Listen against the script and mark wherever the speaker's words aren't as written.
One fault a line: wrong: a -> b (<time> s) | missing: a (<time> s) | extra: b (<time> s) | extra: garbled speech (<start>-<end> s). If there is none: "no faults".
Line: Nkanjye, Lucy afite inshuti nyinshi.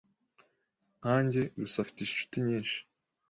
no faults